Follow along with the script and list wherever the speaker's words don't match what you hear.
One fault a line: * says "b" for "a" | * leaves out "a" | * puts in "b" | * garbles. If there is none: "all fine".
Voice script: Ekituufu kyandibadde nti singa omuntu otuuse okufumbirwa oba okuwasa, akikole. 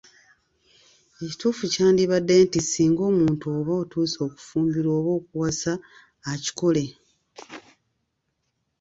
* puts in "oba"